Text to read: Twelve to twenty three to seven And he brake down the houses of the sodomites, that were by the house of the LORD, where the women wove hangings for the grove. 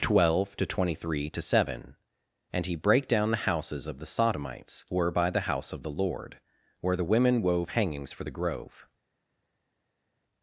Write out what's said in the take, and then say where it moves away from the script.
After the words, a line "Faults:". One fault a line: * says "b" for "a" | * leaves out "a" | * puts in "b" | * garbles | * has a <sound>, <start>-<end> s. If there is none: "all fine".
Twelve to twenty three to seven And he brake down the houses of the sodomites, were by the house of the LORD, where the women wove hangings for the grove.
Faults:
* leaves out "that"